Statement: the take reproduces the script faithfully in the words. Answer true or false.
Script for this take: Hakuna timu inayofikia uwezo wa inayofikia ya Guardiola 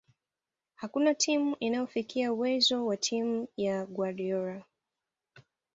false